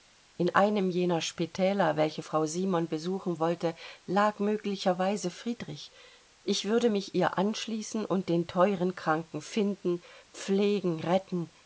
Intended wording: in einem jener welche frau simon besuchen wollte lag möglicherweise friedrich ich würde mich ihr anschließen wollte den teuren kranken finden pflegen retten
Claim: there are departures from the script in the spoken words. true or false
true